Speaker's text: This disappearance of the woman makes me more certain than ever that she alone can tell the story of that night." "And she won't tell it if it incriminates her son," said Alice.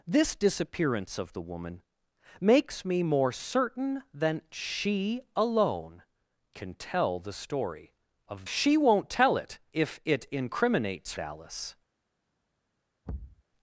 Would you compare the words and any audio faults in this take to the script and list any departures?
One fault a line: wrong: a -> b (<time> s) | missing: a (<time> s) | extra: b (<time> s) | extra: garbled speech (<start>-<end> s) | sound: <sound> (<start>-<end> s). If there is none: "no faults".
missing: ever that (4.4 s)
missing: that night And (8.5 s)
missing: her son said (11.1 s)
sound: thud (13.1-13.4 s)